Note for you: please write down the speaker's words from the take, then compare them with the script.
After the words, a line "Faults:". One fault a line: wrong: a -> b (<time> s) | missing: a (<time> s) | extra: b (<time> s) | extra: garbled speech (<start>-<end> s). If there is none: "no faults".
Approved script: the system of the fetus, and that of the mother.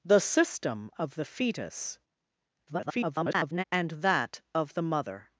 the system of the fetus, [garbled] and that of the mother.
Faults:
extra: garbled speech (2.7-3.6 s)